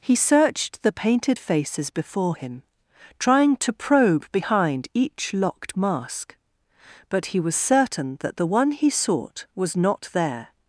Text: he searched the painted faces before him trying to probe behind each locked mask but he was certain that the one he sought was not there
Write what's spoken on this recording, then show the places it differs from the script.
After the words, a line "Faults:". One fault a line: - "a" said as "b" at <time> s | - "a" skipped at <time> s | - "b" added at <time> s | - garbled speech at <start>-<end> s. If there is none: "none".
he searched the painted faces before him trying to probe behind each locked mask but he was certain that the one he sought was not there
Faults:
none